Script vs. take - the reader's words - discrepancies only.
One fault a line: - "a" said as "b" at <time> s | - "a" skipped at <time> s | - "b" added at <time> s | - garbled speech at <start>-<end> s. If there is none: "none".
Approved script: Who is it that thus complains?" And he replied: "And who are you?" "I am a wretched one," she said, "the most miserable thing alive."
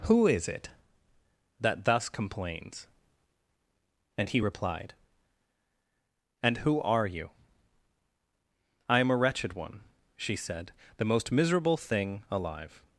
none